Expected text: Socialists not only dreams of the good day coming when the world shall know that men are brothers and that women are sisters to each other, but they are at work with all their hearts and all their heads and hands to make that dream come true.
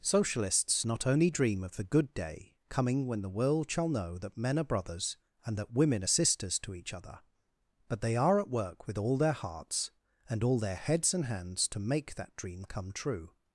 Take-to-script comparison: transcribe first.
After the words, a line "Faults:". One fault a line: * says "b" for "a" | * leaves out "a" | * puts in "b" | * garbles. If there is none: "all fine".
Socialists not only dream of the good day coming when the world shall know that men are brothers and that women are sisters to each other, but they are at work with all their hearts and all their heads and hands to make that dream come true.
Faults:
* says "dream" for "dreams"